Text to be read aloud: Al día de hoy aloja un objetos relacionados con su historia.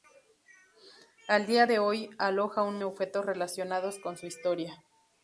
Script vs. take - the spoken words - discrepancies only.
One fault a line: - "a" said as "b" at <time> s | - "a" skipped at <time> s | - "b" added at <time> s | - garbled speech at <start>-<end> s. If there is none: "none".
none